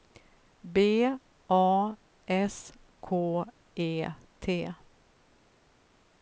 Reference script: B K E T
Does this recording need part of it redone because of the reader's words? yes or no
yes